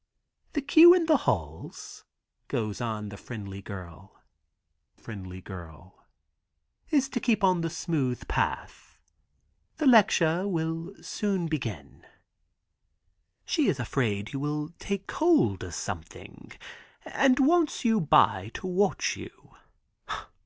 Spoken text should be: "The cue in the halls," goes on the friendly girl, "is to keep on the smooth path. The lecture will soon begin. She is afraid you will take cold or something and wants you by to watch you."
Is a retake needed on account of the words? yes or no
yes